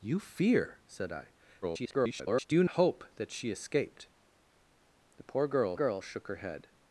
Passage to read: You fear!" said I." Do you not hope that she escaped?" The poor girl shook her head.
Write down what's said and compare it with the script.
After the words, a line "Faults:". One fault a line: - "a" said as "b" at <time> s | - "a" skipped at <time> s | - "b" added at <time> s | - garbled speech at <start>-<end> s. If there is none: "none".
You fear!" said I." [garbled] Do you hope that she escaped?" The poor girl girl shook her head.
Faults:
- garbled speech at 1.6-2.5 s
- "not" skipped at 2.6 s
- "girl" added at 5.7 s